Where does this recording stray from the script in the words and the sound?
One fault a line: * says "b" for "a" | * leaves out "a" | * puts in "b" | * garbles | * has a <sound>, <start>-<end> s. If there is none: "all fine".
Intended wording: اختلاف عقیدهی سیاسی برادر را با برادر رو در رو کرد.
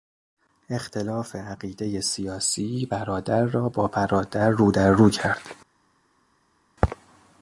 all fine